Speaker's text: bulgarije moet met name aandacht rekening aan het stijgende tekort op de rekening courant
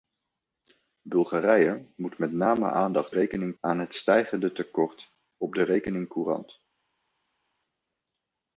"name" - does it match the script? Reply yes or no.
yes